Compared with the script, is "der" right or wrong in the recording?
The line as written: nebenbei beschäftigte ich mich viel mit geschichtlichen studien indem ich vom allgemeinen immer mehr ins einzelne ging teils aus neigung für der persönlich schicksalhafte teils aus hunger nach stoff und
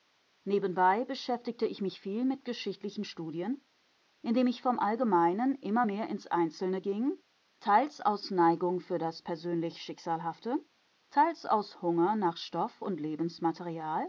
wrong